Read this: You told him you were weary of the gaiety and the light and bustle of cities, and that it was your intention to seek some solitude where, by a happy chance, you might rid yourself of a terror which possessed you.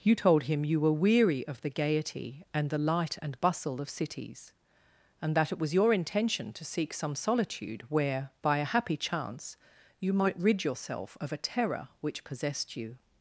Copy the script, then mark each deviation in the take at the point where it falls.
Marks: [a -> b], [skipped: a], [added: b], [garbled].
You told him you were weary of the gaiety and the light and bustle of cities, and that it was your intention to seek some solitude where, by a happy chance, you might rid yourself of a terror which possessed you.